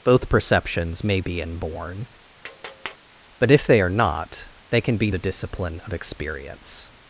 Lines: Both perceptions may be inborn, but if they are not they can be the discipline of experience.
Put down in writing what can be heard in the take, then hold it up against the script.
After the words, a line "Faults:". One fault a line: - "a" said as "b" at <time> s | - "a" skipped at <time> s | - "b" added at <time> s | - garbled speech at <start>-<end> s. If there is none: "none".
Both perceptions may be inborn, but if they are not they can be the discipline of experience.
Faults:
none